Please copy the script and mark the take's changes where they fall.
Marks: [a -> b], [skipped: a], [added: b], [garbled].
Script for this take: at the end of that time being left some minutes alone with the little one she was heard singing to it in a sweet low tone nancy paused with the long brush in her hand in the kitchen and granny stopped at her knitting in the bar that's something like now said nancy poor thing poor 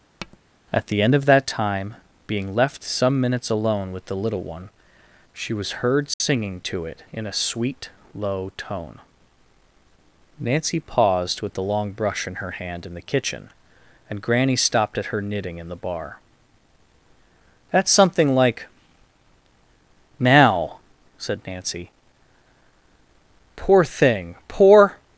at the end of that time being left some minutes alone with the little one she was heard singing to it in a sweet low tone nancy paused with the long brush in her hand in the kitchen and granny stopped at her knitting in the bar that's something like now said nancy poor thing poor